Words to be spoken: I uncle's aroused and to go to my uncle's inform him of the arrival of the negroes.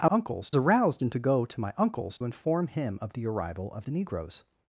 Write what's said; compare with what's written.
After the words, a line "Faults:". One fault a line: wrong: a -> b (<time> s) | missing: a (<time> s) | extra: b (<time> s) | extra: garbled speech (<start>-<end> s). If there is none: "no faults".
I uncle's aroused and to go to my uncle's inform him of the arrival of the negroes.
Faults:
no faults